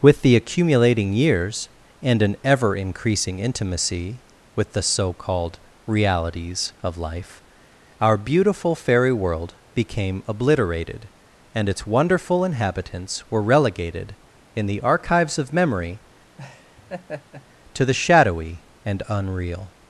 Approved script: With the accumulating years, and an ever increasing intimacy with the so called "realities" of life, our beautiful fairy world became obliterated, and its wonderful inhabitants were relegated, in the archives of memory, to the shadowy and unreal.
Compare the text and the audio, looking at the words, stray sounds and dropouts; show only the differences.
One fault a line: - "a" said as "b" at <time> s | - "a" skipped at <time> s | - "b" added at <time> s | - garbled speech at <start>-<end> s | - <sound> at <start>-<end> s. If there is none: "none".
- laugh at 16.4-17.5 s